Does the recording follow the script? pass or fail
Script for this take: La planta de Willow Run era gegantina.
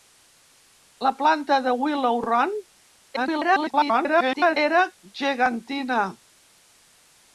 fail